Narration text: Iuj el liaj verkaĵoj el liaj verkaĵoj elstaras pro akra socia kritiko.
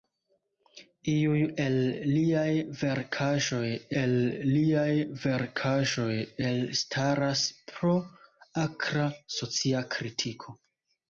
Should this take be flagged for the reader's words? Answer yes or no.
no